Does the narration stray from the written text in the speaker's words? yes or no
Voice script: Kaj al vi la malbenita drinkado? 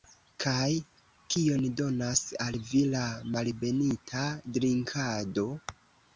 yes